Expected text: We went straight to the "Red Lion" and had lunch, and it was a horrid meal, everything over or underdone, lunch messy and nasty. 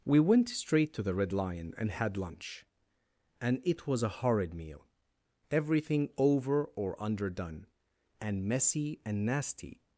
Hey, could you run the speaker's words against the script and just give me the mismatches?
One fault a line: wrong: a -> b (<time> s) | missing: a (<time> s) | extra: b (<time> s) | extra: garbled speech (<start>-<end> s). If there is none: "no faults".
wrong: lunch -> and (8.2 s)